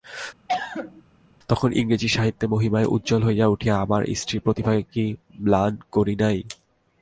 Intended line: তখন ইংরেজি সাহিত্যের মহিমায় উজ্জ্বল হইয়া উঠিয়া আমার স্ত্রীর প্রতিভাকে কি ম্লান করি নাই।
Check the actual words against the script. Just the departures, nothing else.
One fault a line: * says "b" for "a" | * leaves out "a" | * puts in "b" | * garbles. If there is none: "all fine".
all fine